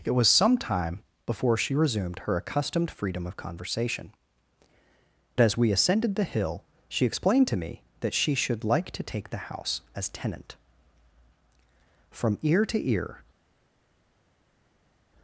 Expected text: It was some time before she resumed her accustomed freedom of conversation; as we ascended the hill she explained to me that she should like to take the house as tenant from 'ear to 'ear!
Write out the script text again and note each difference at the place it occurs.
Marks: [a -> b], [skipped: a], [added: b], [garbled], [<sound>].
It was some time before she resumed her accustomed freedom of conversation; as we ascended the hill she explained to me that she should like to take the house as tenant from 'ear to 'ear!